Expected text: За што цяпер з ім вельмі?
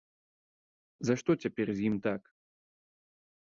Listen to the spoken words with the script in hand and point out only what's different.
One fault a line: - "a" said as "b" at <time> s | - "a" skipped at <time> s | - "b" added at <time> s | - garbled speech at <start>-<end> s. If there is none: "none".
- "вельмі" said as "так" at 2.1 s